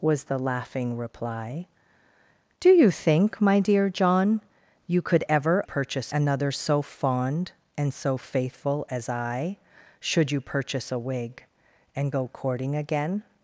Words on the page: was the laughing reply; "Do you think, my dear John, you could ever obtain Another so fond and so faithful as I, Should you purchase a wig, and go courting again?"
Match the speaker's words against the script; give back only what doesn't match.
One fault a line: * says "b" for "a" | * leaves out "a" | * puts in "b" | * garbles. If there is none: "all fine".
* says "purchase" for "obtain"